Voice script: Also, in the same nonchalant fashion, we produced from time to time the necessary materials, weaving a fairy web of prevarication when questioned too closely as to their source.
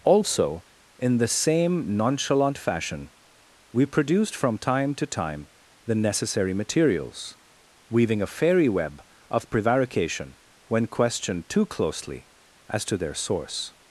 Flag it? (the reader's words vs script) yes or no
no